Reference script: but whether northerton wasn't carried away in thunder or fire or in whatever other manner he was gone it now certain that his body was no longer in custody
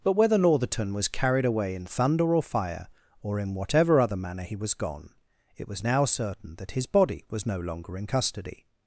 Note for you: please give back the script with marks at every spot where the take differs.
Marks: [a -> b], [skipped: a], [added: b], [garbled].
but whether northerton [wasn't -> was] carried away in thunder or fire or in whatever other manner he was gone it [added: was] now certain that his body was no longer in custody